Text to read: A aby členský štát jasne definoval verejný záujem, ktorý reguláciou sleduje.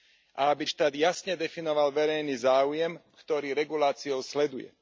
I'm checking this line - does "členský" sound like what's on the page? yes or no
no